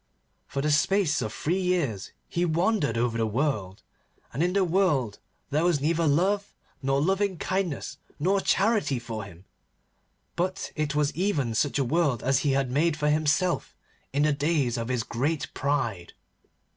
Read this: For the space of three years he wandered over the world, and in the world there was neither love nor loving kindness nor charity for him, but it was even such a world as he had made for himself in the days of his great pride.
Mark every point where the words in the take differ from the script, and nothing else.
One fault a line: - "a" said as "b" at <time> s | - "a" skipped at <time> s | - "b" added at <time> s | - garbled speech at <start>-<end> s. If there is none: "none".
none